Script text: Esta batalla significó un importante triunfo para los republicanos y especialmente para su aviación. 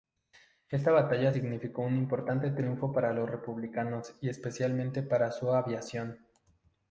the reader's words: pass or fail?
pass